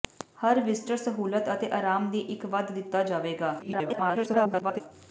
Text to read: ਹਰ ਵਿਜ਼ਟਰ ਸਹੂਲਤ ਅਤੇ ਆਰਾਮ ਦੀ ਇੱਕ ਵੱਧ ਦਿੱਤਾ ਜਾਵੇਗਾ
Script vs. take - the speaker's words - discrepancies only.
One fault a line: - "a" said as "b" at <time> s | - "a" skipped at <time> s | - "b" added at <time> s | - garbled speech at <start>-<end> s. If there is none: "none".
- garbled speech at 3.6-4.8 s